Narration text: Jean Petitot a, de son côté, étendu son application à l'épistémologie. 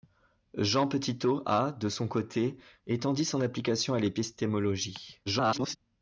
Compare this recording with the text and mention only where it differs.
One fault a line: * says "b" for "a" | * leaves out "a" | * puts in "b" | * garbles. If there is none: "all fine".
* garbles